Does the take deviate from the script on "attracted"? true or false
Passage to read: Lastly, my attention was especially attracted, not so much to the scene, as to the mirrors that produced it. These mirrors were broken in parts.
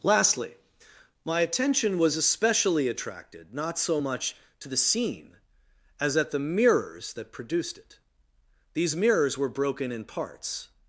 false